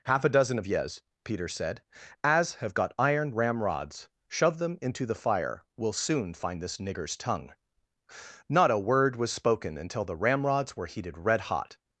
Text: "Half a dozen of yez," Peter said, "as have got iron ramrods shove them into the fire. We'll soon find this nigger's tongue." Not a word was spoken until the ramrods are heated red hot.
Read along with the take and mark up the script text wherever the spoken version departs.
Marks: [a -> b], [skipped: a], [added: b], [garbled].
"Half a dozen of yez," Peter said, "as have got iron ramrods shove them into the fire. We'll soon find this nigger's tongue." Not a word was spoken until the ramrods [are -> were] heated red hot.